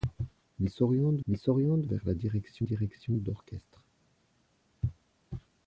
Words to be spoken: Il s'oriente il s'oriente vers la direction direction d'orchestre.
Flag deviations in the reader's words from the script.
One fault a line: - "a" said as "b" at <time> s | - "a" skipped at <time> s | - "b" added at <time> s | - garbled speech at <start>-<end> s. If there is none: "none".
none